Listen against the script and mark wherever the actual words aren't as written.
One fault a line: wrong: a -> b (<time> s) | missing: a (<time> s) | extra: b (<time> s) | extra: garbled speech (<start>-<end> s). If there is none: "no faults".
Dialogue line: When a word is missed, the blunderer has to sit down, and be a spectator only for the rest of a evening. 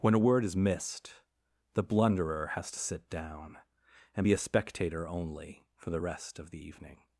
wrong: a -> the (6.5 s)